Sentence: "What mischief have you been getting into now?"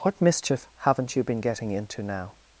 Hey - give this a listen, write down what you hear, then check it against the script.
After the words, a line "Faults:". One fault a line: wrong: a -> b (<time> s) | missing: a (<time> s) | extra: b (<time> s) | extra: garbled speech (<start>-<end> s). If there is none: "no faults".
"What mischief haven't you been getting into now?"
Faults:
wrong: have -> haven't (0.8 s)